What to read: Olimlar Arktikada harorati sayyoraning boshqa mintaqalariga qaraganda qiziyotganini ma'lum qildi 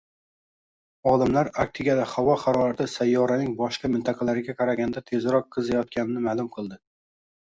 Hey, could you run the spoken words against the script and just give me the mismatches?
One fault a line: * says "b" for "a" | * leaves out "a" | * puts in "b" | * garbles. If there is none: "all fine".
* puts in "havo"
* puts in "tezroq"